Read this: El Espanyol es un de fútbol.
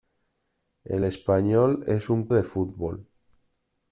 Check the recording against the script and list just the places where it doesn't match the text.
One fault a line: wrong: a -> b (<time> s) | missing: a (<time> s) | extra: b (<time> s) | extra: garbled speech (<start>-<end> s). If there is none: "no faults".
no faults